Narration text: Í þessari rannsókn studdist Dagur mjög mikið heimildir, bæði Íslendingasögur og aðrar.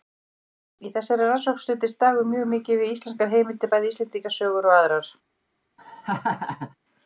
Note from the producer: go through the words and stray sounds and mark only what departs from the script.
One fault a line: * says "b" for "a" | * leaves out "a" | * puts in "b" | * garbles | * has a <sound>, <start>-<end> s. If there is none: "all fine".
* puts in "við íslenskar"
* has a laugh, 5.8-6.8 s